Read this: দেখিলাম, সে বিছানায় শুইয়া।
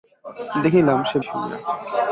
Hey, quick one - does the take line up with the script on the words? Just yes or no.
no